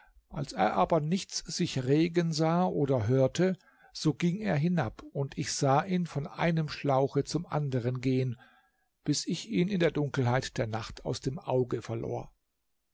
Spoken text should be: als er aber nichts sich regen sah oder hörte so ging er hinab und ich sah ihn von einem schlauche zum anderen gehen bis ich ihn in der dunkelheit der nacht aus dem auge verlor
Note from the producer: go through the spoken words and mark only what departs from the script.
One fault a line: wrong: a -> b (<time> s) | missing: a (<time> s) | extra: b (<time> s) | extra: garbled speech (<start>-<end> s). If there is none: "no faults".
no faults